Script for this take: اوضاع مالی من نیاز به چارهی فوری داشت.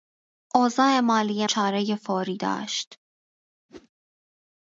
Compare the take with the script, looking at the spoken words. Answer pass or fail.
fail